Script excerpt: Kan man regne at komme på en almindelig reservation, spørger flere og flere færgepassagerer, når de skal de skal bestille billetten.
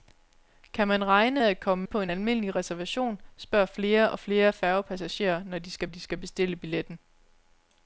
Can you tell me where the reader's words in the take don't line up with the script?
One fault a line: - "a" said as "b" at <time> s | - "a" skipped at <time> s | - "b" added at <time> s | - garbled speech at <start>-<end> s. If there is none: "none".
none